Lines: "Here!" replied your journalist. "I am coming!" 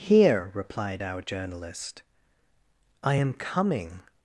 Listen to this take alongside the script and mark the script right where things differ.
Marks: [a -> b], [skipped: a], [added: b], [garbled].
"Here!" replied [your -> our] journalist. "I am coming!"